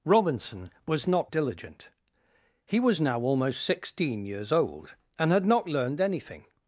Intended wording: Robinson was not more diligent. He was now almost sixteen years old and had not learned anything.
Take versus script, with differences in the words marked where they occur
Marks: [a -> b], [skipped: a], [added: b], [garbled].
Robinson was not [skipped: more] diligent. He was now almost sixteen years old and had not learned anything.